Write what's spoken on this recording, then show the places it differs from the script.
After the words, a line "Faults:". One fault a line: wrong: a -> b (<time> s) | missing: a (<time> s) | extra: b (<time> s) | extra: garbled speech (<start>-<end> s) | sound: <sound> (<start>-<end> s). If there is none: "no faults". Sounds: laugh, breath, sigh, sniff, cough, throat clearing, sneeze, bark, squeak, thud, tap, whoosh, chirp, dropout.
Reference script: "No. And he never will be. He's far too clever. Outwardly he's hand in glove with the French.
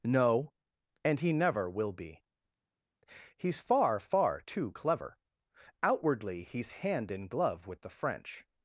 "No. And he never will be. He's far far too clever. Outwardly he's hand in glove with the French.
Faults:
extra: far (4.0 s)